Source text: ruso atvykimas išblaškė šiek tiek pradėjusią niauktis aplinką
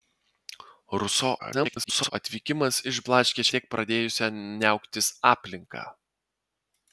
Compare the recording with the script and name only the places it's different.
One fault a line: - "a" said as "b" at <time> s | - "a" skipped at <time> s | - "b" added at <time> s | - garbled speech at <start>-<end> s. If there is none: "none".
- garbled speech at 1.4-2.1 s
- "šiek" skipped at 3.5 s